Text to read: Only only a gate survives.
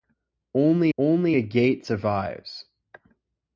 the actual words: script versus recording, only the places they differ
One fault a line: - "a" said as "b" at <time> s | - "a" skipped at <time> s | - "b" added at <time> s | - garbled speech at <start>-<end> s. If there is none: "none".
none